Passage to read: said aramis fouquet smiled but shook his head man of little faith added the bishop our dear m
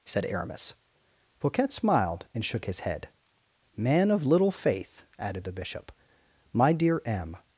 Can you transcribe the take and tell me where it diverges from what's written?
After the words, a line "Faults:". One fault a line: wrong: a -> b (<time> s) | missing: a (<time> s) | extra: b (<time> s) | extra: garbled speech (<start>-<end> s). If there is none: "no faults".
said aramis fouquet smiled and shook his head man of little faith added the bishop my dear m
Faults:
wrong: but -> and (2.3 s)
wrong: our -> my (6.5 s)